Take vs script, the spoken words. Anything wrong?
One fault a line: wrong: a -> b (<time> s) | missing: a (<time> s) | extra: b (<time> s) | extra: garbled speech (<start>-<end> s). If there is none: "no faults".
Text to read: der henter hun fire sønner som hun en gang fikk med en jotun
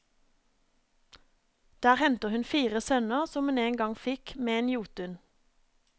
no faults